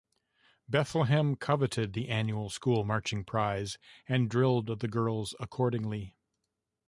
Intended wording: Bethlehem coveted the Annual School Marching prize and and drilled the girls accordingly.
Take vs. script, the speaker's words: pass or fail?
fail